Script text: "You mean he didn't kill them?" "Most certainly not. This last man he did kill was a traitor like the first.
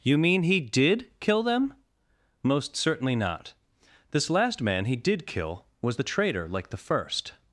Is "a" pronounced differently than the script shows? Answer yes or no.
yes